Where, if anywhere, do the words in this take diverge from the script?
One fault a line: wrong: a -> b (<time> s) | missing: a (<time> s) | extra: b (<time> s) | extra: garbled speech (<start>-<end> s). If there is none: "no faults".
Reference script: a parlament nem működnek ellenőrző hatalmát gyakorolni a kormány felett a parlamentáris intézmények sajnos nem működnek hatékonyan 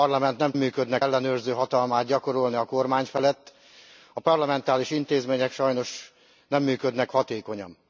no faults